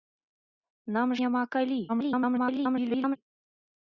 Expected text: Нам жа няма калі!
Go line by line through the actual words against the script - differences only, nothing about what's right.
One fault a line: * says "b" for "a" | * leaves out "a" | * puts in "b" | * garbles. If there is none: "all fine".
* leaves out "жа"
* garbles